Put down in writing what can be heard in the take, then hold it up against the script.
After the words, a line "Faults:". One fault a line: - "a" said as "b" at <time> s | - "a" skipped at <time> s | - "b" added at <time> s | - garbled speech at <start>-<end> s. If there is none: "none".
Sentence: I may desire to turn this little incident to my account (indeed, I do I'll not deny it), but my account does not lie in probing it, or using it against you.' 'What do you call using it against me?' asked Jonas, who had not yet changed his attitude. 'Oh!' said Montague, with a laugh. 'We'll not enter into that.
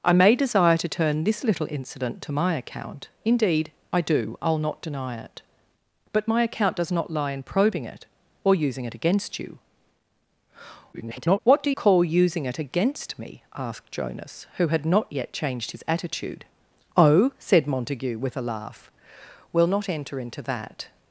I may desire to turn this little incident to my account (indeed, I do I'll not deny it), but my account does not lie in probing it, or using it against you.' [garbled] 'What do call using it against me?' asked Jonas, who had not yet changed his attitude. 'Oh!' said Montague, with a laugh. 'We'll not enter into that.
Faults:
- garbled speech at 10.9-11.4 s
- "you" skipped at 11.7 s